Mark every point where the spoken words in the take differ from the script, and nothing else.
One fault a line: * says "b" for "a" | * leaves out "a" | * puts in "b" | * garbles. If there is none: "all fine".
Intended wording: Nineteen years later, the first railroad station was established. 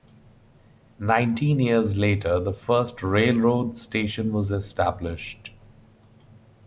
all fine